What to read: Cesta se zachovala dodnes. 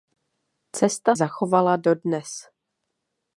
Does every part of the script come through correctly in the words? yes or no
no